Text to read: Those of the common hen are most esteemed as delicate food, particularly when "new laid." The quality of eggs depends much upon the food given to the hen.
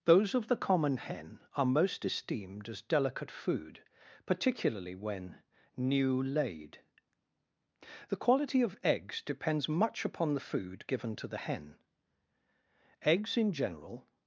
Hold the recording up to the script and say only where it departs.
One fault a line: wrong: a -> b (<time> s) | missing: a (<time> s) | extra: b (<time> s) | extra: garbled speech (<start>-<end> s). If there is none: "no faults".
extra: Eggs in general (13.0 s)